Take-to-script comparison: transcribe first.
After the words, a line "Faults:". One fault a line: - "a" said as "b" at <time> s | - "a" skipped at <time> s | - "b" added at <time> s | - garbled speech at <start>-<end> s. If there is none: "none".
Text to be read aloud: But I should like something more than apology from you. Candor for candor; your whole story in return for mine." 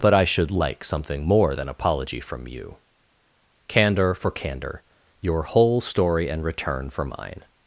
But I should like something more than apology from you. Candor for candor; your whole story and return for mine."
Faults:
- "in" said as "and" at 6.3 s